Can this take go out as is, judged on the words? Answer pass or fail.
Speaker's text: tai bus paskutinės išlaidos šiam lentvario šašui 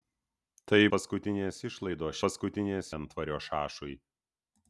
fail